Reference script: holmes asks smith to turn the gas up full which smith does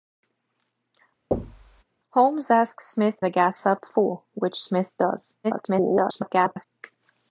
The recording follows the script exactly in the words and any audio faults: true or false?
false